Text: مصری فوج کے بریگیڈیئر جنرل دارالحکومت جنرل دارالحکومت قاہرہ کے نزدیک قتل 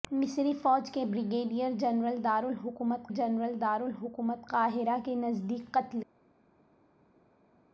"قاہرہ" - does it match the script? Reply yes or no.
yes